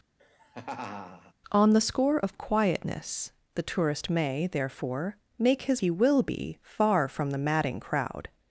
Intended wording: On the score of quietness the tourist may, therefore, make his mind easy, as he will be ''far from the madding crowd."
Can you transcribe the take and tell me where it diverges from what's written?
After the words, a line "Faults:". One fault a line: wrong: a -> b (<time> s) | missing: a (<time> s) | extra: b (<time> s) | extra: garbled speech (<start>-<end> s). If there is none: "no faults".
On the score of quietness the tourist may, therefore, make his he will be ''far from the madding crowd."
Faults:
missing: mind easy as (5.8 s)